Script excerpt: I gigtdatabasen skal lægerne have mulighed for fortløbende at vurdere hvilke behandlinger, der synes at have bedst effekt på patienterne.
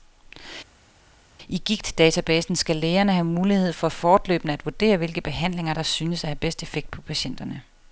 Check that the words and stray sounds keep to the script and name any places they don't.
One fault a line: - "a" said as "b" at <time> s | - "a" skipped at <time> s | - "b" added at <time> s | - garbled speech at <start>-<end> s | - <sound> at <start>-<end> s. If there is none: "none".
none